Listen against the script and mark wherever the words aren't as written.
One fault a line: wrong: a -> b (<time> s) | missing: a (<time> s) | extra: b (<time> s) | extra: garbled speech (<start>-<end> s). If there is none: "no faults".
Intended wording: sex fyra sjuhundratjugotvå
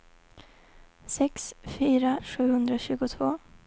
no faults